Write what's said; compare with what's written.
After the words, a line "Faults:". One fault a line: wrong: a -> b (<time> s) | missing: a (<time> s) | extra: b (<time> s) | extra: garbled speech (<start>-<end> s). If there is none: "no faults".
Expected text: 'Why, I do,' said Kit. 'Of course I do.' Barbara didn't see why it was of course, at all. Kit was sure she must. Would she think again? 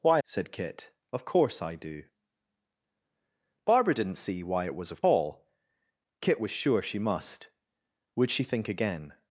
'Why,' said Kit. 'Of course I do.' Barbara didn't see why it was of all. Kit was sure she must. Would she think again?
Faults:
missing: I do (0.2 s)
missing: course at (5.0 s)